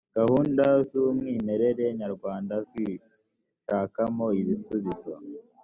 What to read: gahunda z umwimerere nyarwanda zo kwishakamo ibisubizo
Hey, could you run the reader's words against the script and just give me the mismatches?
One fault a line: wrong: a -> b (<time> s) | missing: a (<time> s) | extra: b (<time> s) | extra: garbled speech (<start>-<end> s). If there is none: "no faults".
missing: zo (2.5 s)